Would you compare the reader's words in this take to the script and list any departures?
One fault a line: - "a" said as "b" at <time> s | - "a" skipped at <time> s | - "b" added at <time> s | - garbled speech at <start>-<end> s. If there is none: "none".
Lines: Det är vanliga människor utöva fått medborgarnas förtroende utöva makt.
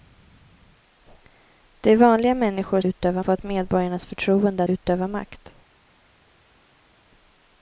none